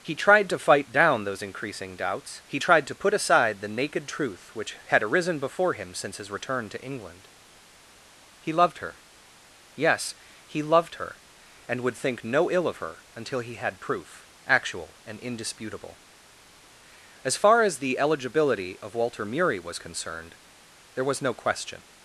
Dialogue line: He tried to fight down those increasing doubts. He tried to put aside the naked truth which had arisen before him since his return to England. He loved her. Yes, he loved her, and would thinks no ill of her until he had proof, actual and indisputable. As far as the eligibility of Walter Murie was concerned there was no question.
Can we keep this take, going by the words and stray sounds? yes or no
no